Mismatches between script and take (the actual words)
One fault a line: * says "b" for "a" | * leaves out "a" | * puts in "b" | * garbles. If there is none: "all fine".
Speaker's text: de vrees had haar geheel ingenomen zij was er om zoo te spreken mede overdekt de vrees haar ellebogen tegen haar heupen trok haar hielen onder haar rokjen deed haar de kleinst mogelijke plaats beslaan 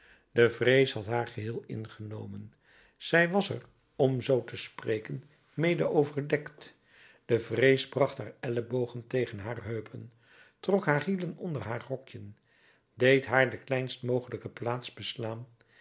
* puts in "bracht"